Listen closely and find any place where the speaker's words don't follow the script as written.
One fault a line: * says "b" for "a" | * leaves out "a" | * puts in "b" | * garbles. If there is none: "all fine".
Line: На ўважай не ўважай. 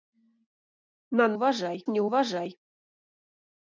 all fine